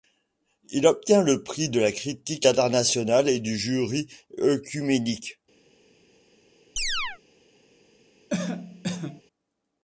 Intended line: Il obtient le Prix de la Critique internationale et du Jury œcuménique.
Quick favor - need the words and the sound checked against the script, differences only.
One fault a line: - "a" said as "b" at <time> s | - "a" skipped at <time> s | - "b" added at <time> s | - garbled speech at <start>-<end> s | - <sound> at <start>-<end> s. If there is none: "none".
- chirp at 6.8-7.2 s
- cough at 8.3-9.2 s